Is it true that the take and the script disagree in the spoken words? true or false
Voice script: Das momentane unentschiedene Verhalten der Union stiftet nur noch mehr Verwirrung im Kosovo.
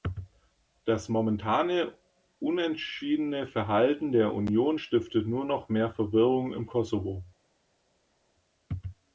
false